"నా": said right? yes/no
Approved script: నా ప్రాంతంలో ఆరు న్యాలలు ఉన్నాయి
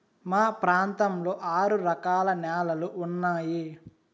no